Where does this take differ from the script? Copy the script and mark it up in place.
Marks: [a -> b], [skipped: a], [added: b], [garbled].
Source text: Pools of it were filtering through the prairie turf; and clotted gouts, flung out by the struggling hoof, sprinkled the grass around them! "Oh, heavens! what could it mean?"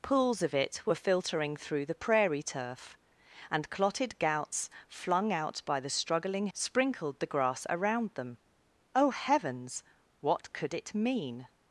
Pools of it were filtering through the prairie turf; and clotted gouts, flung out by the struggling [skipped: hoof,] sprinkled the grass around them! "Oh, heavens! what could it mean?"